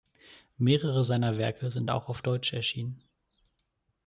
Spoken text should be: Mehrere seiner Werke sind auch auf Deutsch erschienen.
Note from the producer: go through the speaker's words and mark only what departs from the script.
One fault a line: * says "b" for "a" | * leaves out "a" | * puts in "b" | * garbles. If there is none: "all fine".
all fine